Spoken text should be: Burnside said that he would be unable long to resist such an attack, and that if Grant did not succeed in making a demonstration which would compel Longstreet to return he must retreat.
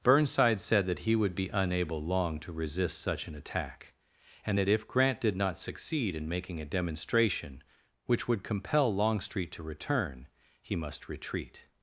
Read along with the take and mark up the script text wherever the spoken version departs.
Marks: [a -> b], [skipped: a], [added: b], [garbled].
Burnside said that he would be unable long to resist such an attack, and that if Grant did not succeed in making a demonstration which would compel Longstreet to return he must retreat.